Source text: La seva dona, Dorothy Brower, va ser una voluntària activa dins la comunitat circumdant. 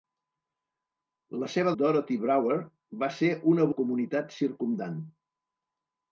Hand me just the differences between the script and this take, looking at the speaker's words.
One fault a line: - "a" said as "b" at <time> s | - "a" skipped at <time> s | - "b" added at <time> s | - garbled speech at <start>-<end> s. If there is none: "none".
- "dona" skipped at 1.7 s
- "voluntària activa dins" skipped at 3.7 s